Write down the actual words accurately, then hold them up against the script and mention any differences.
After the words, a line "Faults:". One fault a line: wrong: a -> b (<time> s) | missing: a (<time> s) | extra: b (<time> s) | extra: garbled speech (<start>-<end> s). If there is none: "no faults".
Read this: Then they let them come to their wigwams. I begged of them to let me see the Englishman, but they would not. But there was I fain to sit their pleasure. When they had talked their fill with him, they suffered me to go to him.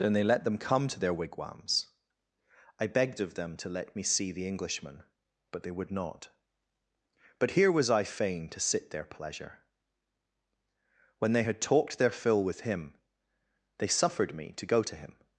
Then they let them come to their wigwams. I begged of them to let me see the Englishman, but they would not. But here was I fain to sit their pleasure. When they had talked their fill with him, they suffered me to go to him.
Faults:
wrong: there -> here (7.5 s)